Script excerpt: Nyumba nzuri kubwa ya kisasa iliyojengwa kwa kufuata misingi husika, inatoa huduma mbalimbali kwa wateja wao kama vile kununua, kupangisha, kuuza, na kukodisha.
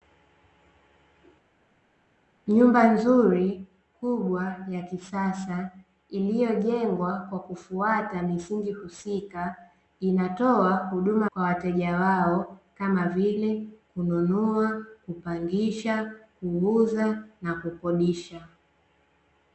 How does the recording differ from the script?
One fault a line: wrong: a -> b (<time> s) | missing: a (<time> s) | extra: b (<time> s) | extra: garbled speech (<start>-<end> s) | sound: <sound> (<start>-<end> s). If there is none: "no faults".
missing: mbalimbali (11.3 s)